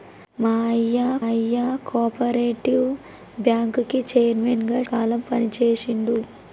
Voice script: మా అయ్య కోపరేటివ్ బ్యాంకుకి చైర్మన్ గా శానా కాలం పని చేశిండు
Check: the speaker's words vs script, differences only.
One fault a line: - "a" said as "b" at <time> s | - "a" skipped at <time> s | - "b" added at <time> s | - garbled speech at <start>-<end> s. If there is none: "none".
- "అయ్య" added at 1.2 s
- "శానా" skipped at 4.8 s